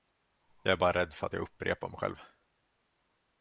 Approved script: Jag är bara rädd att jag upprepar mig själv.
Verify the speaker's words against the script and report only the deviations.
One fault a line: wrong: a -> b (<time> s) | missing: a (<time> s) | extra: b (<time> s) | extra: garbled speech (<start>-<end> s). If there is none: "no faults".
extra: för (1.1 s)